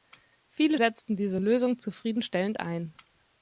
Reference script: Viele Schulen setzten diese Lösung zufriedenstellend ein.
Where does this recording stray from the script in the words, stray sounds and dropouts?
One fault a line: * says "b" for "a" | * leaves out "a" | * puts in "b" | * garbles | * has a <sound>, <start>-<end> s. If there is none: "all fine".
* leaves out "Schulen"